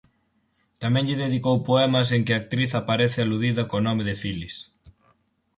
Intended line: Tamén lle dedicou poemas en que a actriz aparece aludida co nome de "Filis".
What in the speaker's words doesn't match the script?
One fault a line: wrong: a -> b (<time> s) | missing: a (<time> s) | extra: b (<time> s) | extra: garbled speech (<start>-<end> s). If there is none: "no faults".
no faults